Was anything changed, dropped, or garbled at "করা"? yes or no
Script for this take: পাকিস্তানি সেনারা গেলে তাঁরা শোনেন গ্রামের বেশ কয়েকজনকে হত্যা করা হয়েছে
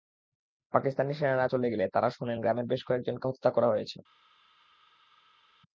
no